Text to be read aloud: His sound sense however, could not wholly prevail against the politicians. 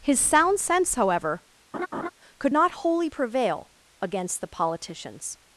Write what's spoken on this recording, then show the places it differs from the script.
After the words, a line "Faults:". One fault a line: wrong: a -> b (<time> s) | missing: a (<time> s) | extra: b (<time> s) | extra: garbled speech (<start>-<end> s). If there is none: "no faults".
His sound sense however, could not wholly prevail against the politicians.
Faults:
no faults